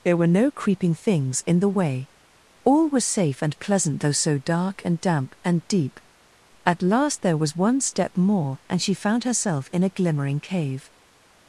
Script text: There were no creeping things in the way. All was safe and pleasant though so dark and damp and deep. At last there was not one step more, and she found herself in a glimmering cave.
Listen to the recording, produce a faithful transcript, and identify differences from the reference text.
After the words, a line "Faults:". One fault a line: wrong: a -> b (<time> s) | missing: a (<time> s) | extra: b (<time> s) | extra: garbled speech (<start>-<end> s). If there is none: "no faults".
There were no creeping things in the way. All was safe and pleasant though so dark and damp and deep. At last there was one step more, and she found herself in a glimmering cave.
Faults:
missing: not (7.5 s)